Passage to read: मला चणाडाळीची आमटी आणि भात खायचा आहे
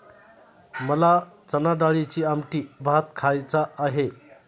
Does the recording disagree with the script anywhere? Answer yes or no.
yes